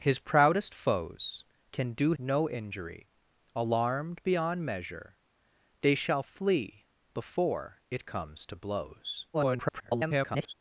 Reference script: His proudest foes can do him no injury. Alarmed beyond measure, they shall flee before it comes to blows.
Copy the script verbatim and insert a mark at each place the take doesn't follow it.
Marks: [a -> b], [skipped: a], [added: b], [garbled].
His proudest foes can do [skipped: him] no injury. Alarmed beyond measure, they shall flee before it comes to blows. [garbled]